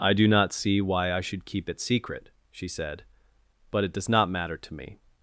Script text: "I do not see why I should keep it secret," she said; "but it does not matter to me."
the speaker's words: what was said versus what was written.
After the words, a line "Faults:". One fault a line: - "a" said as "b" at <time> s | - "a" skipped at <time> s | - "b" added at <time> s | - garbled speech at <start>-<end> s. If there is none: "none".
"I do not see why I should keep it secret," she said; "but it does not matter to me."
Faults:
none